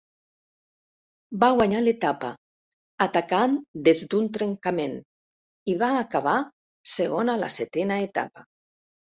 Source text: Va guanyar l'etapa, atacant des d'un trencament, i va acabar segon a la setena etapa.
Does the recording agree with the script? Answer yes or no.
yes